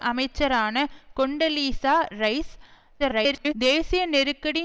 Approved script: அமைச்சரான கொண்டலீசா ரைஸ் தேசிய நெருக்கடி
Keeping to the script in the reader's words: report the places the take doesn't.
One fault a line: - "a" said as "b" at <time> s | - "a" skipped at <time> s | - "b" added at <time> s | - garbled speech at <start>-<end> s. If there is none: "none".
- garbled speech at 3.0-3.5 s